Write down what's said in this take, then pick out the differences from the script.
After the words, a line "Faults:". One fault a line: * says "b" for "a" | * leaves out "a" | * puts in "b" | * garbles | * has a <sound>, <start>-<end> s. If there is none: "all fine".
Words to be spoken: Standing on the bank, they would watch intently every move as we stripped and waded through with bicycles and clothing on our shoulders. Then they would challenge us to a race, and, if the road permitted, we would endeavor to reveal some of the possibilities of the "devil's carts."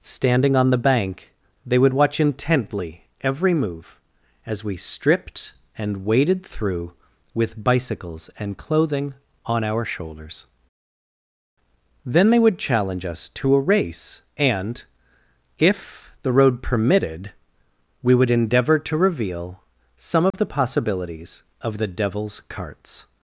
Standing on the bank, they would watch intently every move as we stripped and waded through with bicycles and clothing on our shoulders. Then they would challenge us to a race, and, if the road permitted, we would endeavor to reveal some of the possibilities of the "devil's carts."
Faults:
* has a dropout, 20.3-20.3 s